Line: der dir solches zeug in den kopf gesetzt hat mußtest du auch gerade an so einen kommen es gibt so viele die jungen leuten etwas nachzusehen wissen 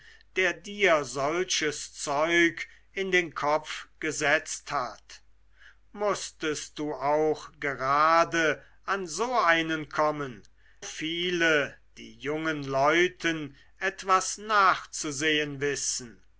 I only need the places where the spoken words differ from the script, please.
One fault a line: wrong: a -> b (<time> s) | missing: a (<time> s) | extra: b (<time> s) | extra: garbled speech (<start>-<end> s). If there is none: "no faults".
missing: es gibt so (10.4 s)